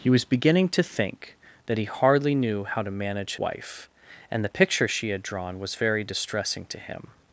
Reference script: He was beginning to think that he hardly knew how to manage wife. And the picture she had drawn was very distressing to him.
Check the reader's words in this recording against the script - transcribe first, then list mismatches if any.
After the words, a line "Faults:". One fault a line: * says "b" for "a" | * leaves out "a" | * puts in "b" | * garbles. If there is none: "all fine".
He was beginning to think that he hardly knew how to manage wife. And the picture she had drawn was very distressing to him.
Faults:
all fine